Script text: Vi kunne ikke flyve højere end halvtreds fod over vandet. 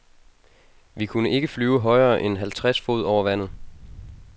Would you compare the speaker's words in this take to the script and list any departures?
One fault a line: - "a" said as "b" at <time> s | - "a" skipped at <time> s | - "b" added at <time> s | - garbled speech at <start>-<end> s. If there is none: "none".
none